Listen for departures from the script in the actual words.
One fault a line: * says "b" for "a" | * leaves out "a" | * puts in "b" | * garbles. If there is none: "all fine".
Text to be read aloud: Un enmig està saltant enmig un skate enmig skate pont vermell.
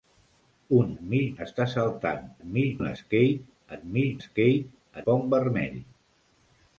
all fine